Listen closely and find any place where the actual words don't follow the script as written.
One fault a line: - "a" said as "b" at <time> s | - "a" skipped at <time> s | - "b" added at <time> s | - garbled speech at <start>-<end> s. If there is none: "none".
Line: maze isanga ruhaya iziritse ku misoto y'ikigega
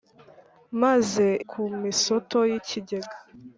- "isanga ruhaya iziritse" skipped at 1.2 s